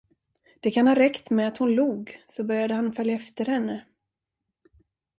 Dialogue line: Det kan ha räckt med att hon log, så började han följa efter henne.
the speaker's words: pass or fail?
pass